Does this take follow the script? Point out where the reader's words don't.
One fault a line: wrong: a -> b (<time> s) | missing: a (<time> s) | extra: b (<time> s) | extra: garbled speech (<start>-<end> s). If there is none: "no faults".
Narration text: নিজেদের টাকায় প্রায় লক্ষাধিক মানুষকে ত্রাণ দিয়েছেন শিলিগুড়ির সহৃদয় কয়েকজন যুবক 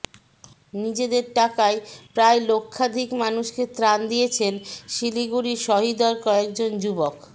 no faults